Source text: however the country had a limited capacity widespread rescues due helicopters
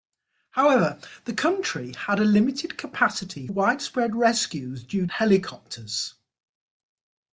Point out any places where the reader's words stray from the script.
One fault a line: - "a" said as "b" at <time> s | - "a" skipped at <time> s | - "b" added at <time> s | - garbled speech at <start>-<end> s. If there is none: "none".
none